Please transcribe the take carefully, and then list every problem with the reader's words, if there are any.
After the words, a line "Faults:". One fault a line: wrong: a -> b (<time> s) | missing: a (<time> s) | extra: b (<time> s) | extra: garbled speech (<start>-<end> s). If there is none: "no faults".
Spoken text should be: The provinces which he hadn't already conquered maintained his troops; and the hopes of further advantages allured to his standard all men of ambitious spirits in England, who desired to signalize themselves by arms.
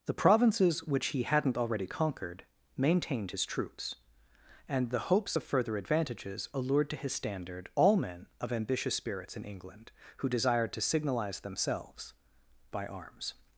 The provinces which he hadn't already conquered maintained his troops; and the hopes of further advantages allured to his standard all men of ambitious spirits in England, who desired to signalize themselves by arms.
Faults:
no faults